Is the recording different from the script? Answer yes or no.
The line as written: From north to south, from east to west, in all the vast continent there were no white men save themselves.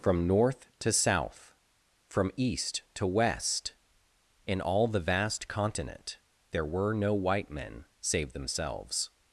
no